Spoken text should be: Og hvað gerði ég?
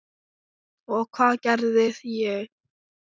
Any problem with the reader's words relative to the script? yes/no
no